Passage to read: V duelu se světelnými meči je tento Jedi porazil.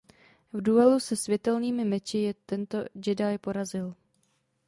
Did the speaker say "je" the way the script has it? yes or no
yes